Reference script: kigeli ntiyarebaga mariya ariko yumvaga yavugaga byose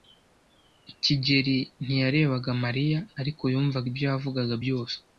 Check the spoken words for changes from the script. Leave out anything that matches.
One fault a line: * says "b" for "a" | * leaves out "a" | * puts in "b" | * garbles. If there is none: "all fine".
* puts in "ibyo"